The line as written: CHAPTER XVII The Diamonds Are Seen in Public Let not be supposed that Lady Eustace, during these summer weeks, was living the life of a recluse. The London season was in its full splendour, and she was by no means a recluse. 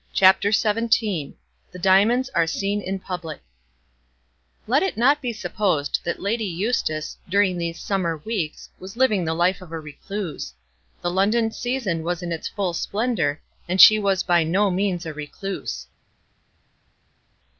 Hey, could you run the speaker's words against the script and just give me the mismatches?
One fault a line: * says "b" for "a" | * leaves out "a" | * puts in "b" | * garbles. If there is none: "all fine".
* puts in "it"